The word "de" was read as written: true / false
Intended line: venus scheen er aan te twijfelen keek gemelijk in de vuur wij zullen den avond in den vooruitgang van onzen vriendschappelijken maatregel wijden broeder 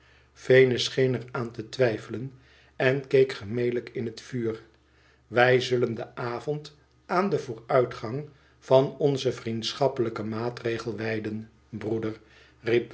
false